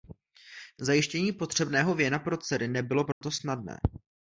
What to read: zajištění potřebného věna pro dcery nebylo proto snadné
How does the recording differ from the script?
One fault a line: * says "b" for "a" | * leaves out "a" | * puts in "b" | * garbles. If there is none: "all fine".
all fine